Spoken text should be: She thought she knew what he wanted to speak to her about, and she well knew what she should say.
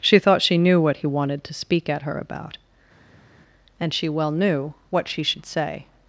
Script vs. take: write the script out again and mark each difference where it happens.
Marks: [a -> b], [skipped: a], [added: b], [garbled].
She thought she knew what he wanted to speak [to -> at] her about, and she well knew what she should say.